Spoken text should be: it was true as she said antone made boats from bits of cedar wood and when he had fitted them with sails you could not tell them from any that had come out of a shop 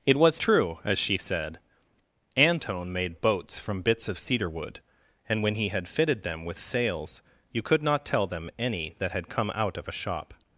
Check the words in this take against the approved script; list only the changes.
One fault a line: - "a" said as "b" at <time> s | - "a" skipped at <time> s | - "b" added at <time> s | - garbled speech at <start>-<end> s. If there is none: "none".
- "from" skipped at 8.5 s